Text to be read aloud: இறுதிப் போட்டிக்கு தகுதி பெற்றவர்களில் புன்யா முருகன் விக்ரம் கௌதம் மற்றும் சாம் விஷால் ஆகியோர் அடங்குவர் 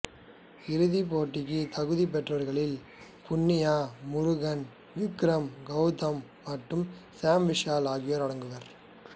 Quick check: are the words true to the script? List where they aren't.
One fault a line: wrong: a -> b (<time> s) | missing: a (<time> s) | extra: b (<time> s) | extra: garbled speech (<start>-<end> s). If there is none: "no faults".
no faults